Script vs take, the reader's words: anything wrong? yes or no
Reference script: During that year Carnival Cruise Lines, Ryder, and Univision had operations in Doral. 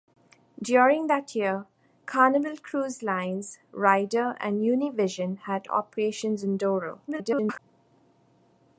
yes